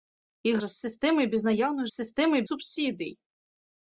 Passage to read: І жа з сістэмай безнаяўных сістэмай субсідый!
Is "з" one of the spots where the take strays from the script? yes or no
no